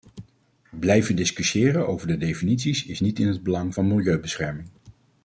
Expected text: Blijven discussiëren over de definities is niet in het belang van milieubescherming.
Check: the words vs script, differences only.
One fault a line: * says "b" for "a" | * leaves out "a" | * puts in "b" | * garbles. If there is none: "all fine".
all fine